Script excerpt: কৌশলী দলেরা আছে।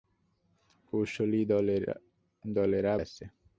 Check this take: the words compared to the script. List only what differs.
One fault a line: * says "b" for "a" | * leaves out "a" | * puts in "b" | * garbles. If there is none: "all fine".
all fine